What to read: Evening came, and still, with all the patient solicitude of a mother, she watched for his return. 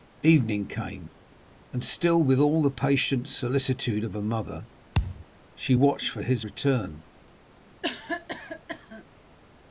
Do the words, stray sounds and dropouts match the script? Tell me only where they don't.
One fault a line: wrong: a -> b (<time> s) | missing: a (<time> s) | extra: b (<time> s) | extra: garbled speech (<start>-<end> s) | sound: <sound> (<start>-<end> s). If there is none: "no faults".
sound: thud (4.9-5.3 s)
sound: cough (7.8-9.0 s)